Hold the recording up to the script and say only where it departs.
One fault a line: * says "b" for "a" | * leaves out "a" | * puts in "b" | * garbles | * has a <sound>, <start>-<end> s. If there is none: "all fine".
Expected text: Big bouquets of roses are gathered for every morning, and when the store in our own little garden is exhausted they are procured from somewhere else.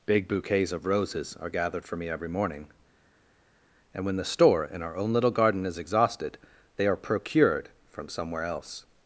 * puts in "me"